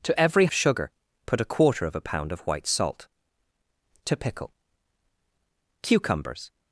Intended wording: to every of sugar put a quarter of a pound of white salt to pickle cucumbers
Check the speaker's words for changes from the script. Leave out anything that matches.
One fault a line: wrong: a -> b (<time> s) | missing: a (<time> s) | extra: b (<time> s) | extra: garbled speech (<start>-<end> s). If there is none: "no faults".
no faults